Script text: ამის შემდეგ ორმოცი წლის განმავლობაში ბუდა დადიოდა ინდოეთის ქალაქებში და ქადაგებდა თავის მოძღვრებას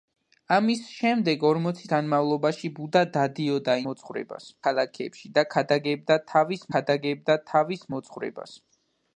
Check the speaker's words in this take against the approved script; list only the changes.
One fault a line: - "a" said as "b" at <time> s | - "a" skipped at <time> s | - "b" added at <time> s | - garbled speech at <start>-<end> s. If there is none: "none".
- "წლის" skipped at 1.9 s
- "ინდოეთის" said as "მოძღვრებას" at 3.9 s
- "ქადაგებდა თავის" added at 6.8 s